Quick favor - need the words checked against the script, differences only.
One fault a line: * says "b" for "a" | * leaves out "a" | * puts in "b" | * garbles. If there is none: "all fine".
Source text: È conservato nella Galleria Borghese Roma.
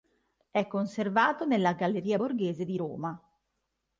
* puts in "di"